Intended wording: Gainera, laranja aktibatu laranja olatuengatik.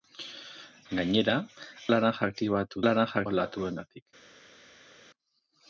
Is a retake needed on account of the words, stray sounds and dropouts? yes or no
no